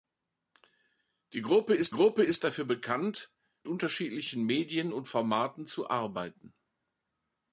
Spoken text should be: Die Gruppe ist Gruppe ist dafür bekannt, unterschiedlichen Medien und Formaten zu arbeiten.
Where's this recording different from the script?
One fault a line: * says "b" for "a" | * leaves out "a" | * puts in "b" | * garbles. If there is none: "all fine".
all fine